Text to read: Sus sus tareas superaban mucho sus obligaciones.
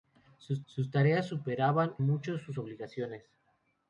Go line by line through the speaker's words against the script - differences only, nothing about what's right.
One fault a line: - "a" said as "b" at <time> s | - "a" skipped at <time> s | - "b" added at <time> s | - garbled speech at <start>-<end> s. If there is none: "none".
none